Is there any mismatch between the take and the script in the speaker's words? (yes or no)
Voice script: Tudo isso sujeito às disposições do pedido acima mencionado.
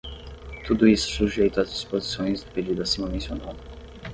no